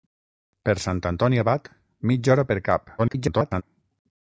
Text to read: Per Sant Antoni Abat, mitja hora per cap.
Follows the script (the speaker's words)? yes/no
no